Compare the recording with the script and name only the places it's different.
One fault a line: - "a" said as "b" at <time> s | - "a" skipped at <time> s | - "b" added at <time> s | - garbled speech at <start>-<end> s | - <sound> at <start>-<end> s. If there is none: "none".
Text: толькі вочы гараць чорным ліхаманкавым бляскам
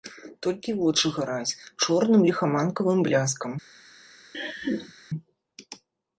- laugh at 4.3-4.9 s